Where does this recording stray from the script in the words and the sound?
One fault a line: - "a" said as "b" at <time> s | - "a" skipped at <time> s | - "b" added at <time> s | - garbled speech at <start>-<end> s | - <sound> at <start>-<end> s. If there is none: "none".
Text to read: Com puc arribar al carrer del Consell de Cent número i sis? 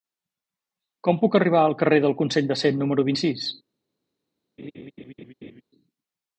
- laugh at 4.6-5.6 s